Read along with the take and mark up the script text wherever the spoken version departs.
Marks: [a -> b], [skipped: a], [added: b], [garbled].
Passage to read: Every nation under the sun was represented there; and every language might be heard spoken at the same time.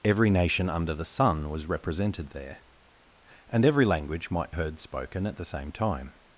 Every nation under the sun was represented there; and every language might [skipped: be] heard spoken at the same time.